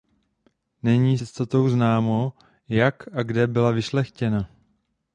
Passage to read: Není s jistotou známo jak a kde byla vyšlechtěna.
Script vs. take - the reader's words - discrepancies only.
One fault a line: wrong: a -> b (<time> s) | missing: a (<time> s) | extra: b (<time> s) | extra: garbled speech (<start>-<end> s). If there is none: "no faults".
missing: s (1.2 s)